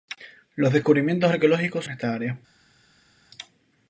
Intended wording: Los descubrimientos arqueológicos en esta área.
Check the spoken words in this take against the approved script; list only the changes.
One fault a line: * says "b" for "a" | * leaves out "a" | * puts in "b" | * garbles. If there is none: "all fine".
all fine